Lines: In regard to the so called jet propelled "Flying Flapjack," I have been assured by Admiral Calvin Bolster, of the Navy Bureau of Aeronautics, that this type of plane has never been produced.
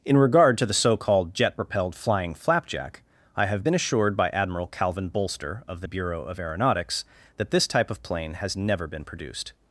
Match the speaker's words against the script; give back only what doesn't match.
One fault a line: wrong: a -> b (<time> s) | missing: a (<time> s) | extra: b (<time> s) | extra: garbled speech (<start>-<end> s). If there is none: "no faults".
missing: Navy (5.9 s)